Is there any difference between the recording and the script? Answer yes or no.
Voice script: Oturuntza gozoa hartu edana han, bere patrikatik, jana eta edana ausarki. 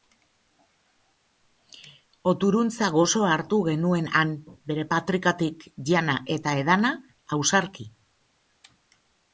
yes